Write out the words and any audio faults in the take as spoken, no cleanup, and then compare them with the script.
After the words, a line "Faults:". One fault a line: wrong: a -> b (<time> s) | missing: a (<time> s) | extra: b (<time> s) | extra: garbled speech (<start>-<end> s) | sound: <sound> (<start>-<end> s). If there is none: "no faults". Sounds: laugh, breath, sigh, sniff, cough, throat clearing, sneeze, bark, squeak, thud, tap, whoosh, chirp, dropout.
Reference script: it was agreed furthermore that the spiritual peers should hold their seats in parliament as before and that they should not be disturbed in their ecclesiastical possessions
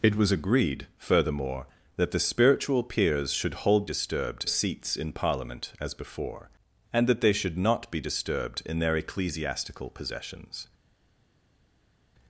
it was agreed furthermore that the spiritual peers should hold disturbed seats in parliament as before and that they should not be disturbed in their ecclesiastical possessions
Faults:
wrong: their -> disturbed (3.8 s)